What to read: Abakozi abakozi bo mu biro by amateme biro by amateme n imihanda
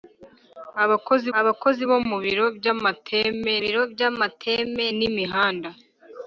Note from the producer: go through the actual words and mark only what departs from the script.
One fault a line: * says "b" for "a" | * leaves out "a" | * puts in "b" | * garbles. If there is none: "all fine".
all fine